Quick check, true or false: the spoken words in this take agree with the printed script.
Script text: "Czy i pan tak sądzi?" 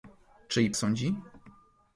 false